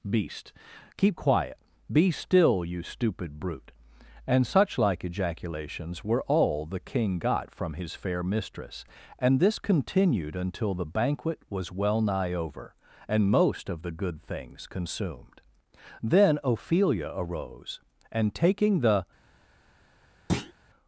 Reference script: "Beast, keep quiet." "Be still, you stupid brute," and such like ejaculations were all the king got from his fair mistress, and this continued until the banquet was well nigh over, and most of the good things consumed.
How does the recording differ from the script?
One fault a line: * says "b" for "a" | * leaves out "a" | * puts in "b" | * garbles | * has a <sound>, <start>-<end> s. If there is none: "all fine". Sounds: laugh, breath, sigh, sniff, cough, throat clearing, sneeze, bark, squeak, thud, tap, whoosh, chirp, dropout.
* puts in "Then Ophelia arose and taking the"
* has a thud, 20.3-20.5 s